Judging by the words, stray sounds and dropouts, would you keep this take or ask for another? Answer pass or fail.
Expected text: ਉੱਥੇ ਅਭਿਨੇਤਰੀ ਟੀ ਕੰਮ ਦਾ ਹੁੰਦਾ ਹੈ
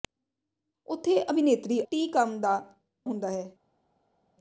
pass